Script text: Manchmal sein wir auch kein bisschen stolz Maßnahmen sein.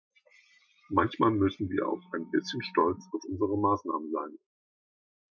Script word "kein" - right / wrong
wrong